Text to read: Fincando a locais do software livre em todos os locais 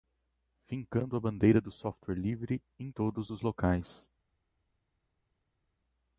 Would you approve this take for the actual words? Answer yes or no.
no